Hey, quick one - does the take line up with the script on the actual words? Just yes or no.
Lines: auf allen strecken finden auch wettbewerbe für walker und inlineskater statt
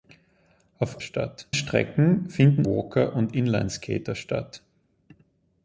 no